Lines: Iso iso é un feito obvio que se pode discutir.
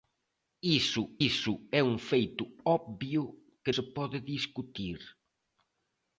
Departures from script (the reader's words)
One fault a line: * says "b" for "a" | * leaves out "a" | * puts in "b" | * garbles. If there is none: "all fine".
all fine